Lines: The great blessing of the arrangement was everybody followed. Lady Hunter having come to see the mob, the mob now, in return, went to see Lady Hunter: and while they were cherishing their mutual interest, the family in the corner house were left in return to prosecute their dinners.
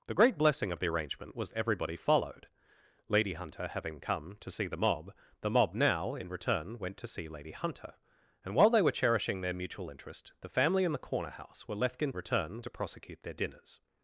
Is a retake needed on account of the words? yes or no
no